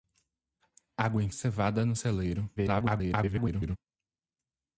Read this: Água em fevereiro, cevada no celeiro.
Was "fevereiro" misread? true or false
true